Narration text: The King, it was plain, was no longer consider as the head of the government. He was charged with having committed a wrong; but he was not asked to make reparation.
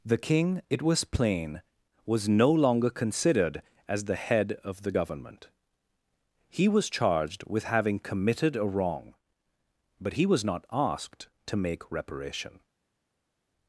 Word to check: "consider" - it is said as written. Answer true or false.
false